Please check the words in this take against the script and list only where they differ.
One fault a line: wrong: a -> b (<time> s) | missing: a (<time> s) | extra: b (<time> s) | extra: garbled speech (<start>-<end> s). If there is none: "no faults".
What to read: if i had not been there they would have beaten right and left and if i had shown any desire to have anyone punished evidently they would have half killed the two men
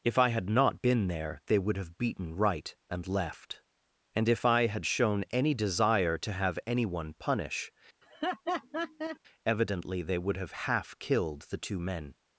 wrong: punished -> punish (7.1 s)